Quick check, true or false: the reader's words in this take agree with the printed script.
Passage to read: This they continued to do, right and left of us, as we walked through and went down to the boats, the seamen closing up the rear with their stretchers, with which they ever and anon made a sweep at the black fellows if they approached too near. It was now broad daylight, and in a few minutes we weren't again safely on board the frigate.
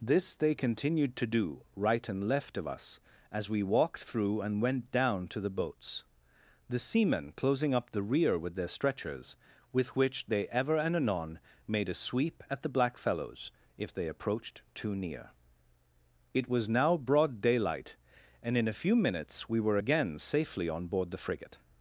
false